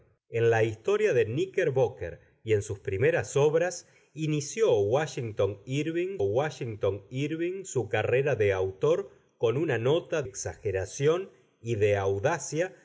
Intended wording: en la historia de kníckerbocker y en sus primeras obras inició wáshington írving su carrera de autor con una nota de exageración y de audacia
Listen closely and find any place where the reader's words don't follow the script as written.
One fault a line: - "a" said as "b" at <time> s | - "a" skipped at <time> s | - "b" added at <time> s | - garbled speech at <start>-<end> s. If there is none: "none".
- "wáshington írving" added at 6.2 s
- "de" skipped at 10.2 s